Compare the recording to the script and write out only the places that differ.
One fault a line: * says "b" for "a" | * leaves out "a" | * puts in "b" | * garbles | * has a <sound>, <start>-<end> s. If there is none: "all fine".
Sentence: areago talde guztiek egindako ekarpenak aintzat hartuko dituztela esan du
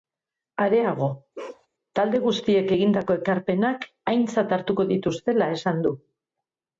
* has a bark, 1.3-1.7 s